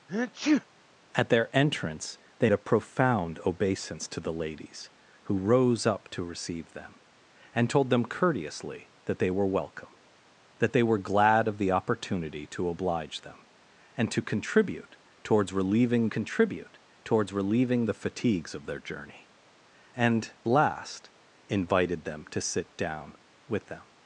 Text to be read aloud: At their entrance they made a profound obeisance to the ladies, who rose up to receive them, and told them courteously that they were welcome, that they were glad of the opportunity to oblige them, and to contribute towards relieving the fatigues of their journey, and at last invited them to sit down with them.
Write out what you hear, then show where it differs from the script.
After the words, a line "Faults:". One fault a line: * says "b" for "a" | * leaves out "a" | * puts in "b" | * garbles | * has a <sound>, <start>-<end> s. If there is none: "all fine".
At their entrance they a profound obeisance to the ladies, who rose up to receive them, and told them courteously that they were welcome, that they were glad of the opportunity to oblige them, and to contribute towards relieving contribute towards relieving the fatigues of their journey, and last invited them to sit down with them.
Faults:
* has a sneeze, 0.1-0.7 s
* leaves out "made"
* puts in "contribute towards relieving"
* leaves out "at"